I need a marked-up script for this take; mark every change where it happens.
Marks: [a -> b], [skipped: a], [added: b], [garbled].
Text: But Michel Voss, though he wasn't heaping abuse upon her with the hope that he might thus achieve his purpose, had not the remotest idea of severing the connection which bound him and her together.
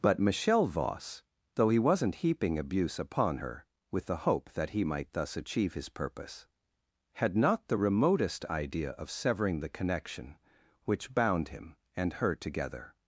But Michel Voss, though he wasn't heaping abuse upon her with the hope that he might thus achieve his purpose, had not the remotest idea of severing the connection which bound him and her together.